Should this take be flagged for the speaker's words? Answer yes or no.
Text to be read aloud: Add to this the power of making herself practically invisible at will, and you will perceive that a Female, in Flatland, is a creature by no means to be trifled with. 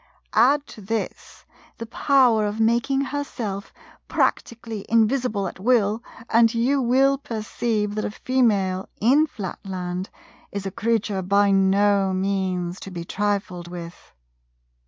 no